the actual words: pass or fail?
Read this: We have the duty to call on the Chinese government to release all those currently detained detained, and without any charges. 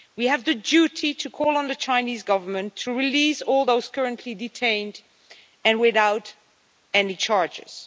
fail